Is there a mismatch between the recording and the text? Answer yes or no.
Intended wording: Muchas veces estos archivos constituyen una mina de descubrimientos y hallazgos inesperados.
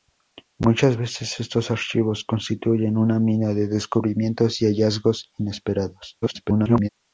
yes